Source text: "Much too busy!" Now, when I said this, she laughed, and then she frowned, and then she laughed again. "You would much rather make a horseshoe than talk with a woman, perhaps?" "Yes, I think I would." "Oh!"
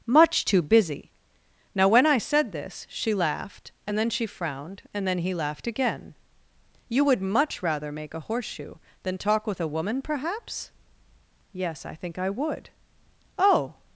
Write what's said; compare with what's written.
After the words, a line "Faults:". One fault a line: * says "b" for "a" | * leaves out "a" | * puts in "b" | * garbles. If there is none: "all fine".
"Much too busy!" Now, when I said this, she laughed, and then she frowned, and then he laughed again. "You would much rather make a horseshoe than talk with a woman, perhaps?" "Yes, I think I would." "Oh!"
Faults:
* says "he" for "she"